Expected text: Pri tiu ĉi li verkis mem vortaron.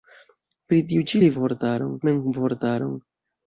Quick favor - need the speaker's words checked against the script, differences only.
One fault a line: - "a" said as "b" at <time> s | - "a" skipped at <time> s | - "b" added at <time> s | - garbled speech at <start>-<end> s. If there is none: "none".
- "verkis" said as "vortaron" at 1.4 s